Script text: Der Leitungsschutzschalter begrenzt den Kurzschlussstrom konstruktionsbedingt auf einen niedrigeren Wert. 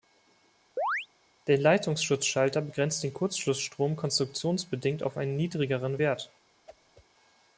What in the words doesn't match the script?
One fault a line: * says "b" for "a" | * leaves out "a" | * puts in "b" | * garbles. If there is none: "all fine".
all fine